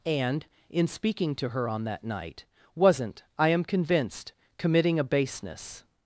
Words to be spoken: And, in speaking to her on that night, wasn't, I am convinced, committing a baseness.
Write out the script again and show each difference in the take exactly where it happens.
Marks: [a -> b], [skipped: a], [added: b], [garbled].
And, in speaking to her on that night, wasn't, I am convinced, committing a baseness.